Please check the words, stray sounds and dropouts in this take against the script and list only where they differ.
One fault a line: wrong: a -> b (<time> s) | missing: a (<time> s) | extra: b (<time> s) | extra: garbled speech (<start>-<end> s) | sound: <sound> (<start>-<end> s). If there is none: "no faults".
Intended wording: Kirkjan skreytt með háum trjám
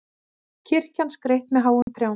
sound: dropout (1.8-1.9 s)